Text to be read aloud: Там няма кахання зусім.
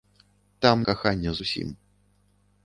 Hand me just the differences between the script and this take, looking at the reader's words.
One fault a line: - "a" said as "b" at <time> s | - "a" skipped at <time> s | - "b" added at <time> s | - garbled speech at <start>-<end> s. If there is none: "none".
- "няма" skipped at 0.8 s